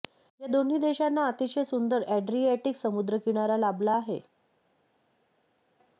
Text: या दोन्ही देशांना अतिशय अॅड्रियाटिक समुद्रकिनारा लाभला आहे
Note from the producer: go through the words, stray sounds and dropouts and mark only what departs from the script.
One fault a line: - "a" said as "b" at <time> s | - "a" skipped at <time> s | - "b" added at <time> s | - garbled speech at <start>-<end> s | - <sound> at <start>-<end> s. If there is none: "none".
- "सुंदर" added at 1.6 s